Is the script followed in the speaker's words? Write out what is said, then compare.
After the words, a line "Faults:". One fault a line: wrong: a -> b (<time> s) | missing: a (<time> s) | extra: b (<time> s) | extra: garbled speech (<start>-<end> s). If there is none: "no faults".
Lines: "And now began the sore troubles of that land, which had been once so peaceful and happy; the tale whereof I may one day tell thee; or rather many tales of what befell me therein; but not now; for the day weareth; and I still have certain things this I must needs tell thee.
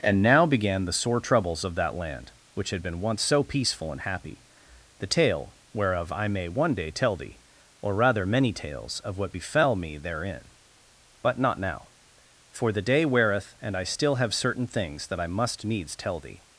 "And now began the sore troubles of that land, which had been once so peaceful and happy; the tale whereof I may one day tell thee; or rather many tales of what befell me therein; but not now; for the day weareth; and I still have certain things that I must needs tell thee.
Faults:
wrong: this -> that (15.1 s)